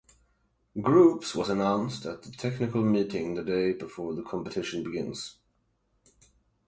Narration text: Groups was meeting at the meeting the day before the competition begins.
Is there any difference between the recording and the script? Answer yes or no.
yes